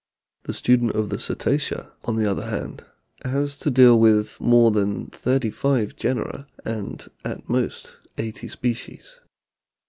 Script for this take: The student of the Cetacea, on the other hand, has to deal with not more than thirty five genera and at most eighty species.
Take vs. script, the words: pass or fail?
fail